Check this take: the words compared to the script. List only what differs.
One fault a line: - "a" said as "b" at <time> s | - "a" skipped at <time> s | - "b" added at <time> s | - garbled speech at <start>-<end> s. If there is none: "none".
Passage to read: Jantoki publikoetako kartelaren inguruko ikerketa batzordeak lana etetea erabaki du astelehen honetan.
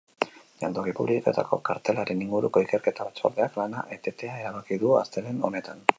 none